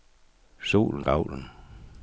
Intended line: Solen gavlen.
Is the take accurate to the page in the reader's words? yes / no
yes